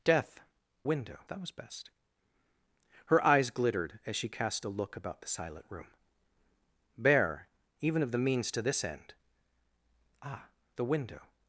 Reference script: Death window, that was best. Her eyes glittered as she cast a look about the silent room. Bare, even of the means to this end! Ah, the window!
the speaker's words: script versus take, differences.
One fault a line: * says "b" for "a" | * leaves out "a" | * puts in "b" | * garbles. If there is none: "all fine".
all fine